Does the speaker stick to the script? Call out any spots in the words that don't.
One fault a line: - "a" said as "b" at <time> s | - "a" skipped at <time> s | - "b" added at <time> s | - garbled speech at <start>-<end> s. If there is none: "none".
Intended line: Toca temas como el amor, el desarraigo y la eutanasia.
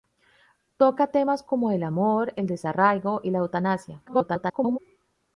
- garbled speech at 4.1-4.8 s